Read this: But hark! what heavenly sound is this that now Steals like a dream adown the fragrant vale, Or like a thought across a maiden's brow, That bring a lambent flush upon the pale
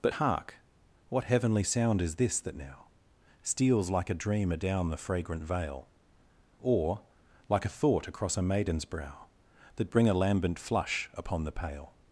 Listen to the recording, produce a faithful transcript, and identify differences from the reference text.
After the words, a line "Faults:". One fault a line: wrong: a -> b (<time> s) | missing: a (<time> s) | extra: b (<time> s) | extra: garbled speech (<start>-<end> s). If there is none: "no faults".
But hark! what heavenly sound is this that now Steals like a dream adown the fragrant vale, Or like a thought across a maiden's brow, That bring a lambent flush upon the pale
Faults:
no faults